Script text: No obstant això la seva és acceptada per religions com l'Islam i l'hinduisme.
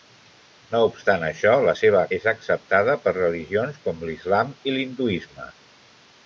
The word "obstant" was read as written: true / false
true